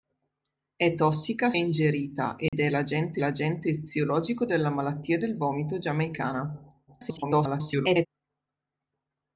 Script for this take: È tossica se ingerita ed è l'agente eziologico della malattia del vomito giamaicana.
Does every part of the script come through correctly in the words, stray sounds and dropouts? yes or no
no